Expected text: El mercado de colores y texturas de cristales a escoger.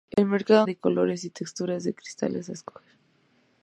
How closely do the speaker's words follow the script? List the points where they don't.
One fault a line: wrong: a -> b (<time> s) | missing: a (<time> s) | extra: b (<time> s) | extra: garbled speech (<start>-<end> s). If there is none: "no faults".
no faults